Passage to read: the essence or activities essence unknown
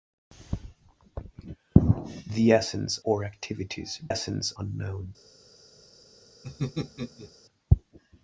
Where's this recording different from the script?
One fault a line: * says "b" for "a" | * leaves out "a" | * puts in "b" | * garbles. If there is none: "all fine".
all fine